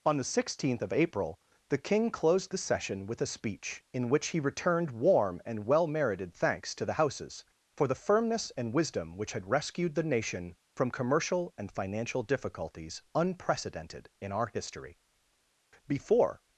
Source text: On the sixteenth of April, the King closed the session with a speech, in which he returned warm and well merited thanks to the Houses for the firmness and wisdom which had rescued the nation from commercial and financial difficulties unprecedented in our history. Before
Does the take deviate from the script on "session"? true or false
false